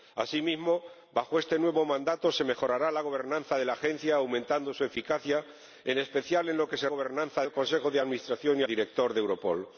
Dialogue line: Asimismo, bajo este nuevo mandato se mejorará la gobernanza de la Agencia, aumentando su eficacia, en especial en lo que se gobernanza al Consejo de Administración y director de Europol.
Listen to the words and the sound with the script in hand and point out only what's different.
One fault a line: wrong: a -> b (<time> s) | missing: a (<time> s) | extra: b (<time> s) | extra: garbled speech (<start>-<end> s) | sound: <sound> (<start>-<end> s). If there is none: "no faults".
no faults